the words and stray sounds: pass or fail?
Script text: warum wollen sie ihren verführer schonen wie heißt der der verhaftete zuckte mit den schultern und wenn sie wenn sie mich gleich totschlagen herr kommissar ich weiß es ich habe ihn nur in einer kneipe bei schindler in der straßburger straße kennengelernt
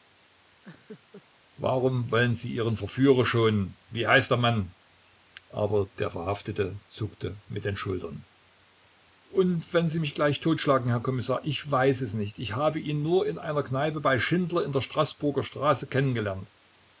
fail